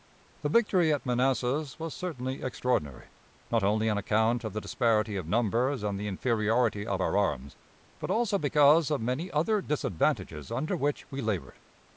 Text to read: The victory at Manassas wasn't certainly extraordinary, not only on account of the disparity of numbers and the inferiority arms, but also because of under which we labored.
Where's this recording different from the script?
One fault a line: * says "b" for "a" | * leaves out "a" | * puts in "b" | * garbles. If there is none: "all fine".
* says "was" for "wasn't"
* puts in "of our"
* puts in "many other disadvantages"